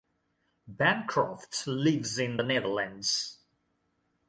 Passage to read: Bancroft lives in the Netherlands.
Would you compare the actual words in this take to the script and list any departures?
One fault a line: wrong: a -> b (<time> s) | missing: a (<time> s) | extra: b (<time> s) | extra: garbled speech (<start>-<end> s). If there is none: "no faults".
no faults